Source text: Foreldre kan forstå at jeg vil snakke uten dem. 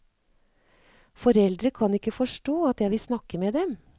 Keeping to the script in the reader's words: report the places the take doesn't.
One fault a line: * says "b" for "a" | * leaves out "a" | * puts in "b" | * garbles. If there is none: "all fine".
* puts in "ikke"
* says "med" for "uten"